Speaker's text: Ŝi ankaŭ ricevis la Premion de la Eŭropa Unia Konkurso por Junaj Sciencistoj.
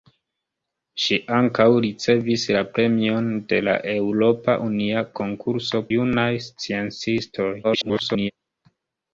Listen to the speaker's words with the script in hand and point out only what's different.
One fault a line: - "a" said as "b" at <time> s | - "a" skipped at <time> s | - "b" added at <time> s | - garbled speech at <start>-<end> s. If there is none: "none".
- "por" skipped at 5.8 s
- garbled speech at 7.6-8.3 s